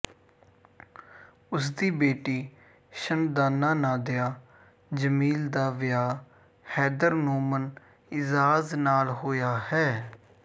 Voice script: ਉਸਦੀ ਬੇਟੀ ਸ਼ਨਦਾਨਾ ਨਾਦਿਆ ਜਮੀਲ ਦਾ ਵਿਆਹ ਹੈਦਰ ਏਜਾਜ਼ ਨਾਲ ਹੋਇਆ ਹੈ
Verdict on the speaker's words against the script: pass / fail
fail